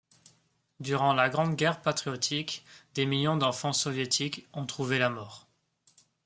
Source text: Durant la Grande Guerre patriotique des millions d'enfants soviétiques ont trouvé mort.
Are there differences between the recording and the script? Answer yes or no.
yes